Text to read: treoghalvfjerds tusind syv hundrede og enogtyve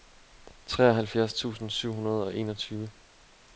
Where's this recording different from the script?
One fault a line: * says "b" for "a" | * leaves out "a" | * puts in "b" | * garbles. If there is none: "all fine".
all fine